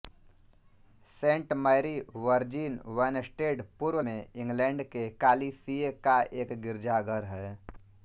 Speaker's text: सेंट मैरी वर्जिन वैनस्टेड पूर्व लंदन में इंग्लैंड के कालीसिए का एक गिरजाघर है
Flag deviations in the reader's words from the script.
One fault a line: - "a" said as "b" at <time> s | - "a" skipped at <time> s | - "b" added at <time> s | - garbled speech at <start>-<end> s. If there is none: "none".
- "लंदन" skipped at 4.0 s